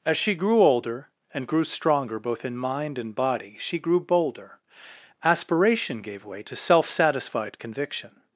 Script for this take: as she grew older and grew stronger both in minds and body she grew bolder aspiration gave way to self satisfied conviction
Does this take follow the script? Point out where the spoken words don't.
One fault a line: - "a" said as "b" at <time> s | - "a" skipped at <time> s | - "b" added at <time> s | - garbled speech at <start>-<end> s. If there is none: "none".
- "minds" said as "mind" at 2.6 s